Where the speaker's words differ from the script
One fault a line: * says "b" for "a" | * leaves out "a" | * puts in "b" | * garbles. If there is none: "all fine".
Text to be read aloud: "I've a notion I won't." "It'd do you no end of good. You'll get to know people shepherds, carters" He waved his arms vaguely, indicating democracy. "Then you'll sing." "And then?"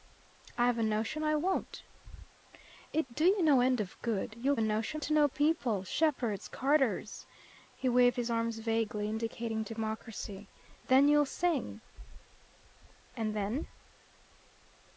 * says "notion" for "get"